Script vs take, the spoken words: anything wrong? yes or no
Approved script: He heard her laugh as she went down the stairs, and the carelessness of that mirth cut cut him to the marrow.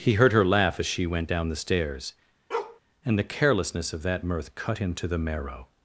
yes